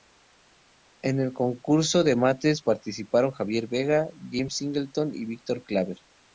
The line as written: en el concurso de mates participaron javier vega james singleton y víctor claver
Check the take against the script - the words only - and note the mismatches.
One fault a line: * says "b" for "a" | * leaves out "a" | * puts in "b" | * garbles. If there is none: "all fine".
all fine